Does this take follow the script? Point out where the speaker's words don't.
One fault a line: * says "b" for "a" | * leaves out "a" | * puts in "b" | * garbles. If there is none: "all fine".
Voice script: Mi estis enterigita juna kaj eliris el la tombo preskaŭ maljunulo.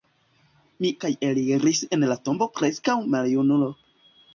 * leaves out "estis enterigita juna"